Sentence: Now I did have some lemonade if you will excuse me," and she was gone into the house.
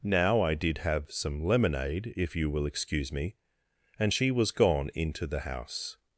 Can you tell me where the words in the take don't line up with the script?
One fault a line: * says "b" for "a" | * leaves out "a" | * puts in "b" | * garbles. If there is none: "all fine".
all fine